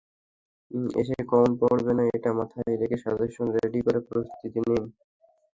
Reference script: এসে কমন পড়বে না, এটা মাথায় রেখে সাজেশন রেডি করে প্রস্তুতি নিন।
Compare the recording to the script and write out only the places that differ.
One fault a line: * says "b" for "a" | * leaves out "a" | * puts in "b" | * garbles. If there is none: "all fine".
all fine